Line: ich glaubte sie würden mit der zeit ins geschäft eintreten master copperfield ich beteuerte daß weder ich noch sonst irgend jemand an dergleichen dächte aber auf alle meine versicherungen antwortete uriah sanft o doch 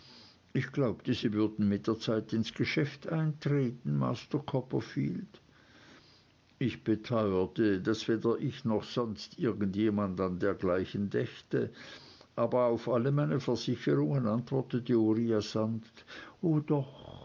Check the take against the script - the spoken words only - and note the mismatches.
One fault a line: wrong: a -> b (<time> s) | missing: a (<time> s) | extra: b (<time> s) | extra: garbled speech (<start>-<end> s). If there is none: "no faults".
no faults